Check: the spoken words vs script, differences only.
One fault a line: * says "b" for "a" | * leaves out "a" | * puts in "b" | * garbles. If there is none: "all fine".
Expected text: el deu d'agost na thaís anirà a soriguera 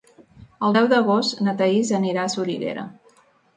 all fine